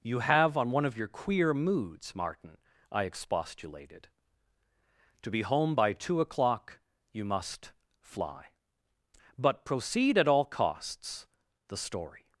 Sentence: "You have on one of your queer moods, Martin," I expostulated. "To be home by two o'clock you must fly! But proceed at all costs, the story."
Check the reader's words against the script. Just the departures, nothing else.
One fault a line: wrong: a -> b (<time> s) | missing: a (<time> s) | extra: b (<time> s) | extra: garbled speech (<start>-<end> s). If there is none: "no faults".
no faults